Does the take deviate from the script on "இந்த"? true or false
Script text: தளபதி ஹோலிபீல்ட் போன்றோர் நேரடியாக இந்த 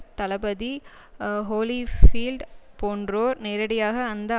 true